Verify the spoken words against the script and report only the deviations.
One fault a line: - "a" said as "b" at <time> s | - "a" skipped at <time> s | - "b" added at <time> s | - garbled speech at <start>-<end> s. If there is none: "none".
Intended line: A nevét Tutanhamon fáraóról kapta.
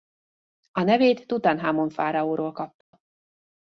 none